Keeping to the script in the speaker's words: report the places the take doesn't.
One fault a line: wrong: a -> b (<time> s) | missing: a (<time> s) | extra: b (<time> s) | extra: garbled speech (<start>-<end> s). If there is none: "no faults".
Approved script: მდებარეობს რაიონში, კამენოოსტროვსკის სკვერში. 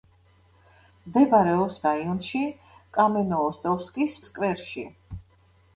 no faults